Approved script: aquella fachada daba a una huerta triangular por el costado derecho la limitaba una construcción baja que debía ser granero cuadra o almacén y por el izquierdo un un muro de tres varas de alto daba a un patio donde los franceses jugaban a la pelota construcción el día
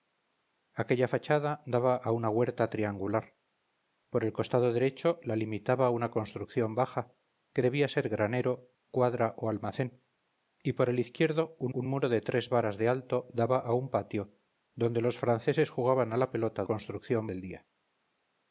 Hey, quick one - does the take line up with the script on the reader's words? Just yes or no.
yes